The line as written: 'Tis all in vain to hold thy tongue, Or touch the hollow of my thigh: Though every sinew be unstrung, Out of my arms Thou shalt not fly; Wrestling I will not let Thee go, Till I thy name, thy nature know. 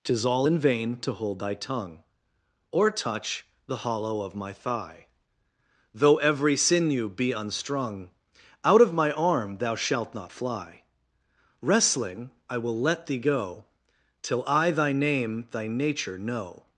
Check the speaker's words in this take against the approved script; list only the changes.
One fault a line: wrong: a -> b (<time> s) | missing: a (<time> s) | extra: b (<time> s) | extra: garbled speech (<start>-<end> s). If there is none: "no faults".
wrong: arms -> arm (9.1 s)
missing: not (12.8 s)